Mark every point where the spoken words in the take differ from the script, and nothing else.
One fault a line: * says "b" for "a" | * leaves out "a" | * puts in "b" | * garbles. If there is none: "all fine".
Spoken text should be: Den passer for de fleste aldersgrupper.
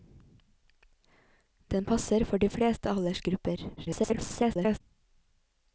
* garbles